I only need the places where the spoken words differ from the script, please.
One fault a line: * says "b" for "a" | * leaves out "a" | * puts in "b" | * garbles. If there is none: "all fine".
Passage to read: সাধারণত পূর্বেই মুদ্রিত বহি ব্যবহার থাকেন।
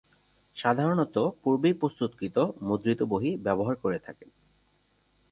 * puts in "প্রস্তুতকৃত"
* puts in "করে"